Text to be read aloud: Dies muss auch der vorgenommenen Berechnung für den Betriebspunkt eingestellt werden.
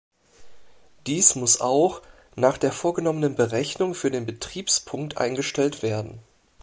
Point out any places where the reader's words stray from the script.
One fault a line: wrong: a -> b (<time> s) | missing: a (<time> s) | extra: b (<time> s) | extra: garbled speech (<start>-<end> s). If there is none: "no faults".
extra: nach (2.4 s)